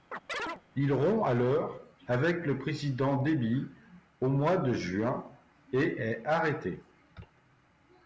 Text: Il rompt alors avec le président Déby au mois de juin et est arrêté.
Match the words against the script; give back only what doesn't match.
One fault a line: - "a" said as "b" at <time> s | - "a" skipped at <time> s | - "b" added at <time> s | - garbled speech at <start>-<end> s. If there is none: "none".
none